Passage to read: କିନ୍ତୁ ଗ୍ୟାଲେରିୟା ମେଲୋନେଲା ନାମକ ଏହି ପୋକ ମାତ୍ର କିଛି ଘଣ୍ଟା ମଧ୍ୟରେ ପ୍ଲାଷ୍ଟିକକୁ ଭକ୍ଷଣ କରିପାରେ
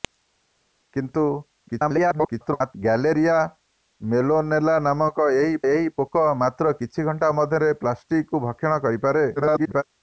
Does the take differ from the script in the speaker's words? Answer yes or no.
yes